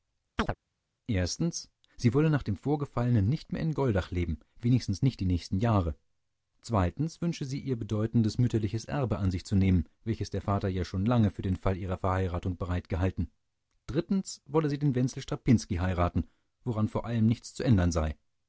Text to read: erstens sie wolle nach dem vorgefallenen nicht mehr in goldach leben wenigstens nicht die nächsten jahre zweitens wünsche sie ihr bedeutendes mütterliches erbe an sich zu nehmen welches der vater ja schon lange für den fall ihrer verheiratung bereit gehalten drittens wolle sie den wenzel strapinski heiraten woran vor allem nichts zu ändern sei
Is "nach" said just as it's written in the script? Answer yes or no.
yes